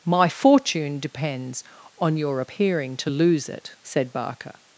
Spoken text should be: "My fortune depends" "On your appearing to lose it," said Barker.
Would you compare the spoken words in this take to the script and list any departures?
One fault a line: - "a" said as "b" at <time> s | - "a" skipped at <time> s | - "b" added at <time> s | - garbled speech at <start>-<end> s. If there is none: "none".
none